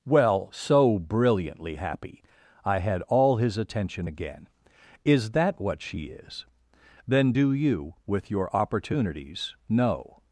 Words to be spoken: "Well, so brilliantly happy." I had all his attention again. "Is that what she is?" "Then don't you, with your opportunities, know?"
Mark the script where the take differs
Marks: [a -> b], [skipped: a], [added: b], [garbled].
"Well, so brilliantly happy." I had all his attention again. "Is that what she is?" "Then [don't -> do] you, with your opportunities, know?"